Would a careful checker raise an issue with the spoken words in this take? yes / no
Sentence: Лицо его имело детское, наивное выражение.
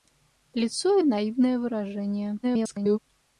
yes